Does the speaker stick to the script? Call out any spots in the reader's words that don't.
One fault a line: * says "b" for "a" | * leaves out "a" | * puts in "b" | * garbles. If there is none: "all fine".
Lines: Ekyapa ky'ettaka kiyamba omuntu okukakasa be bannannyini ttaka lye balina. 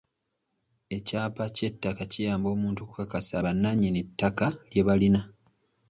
* leaves out "be"